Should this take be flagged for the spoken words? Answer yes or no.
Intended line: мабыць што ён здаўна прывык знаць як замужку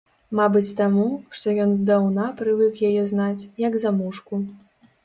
yes